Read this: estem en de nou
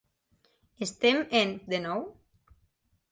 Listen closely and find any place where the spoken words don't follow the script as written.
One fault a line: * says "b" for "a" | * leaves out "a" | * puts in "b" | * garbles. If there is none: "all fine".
all fine